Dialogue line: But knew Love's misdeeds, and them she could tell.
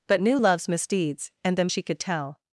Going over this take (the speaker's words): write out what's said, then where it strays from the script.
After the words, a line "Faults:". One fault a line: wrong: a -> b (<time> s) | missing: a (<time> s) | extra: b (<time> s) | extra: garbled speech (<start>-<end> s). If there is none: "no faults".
But knew Love's misdeeds, and them she could tell.
Faults:
no faults